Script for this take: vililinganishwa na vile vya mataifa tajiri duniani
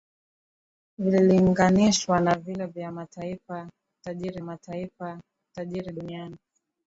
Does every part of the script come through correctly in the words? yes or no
no